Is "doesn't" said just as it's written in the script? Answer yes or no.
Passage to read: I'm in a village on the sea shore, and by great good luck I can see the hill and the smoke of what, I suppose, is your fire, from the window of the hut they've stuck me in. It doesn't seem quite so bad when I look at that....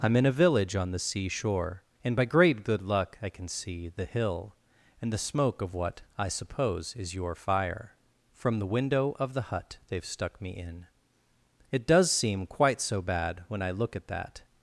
no